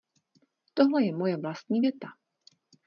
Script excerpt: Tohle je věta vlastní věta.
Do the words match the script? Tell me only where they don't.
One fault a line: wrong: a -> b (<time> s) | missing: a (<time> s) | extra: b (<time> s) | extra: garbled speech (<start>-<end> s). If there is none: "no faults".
wrong: věta -> moje (1.1 s)